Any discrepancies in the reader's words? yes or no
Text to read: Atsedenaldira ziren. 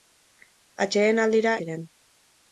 no